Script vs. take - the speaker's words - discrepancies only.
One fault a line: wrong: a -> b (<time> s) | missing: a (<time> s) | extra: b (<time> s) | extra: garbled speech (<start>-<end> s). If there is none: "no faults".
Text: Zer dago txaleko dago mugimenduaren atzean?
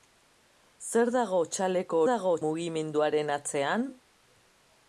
no faults